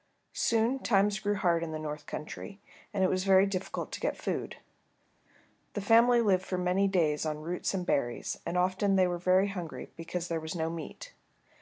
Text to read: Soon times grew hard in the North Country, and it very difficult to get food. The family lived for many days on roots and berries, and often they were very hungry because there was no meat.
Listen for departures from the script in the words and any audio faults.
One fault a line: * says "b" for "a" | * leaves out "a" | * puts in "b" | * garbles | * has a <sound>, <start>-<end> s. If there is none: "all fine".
* puts in "was"